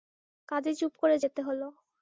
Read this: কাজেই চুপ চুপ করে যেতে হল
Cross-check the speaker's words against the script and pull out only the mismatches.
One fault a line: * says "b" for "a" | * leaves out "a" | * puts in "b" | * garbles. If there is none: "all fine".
* leaves out "চুপ"